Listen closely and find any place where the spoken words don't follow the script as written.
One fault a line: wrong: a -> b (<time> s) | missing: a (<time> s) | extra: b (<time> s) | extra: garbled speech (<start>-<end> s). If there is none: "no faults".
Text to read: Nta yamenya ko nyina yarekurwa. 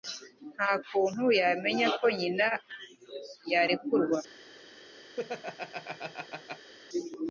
extra: kuntu (0.9 s)